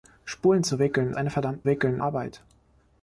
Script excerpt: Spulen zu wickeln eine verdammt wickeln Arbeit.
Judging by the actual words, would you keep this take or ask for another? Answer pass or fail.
pass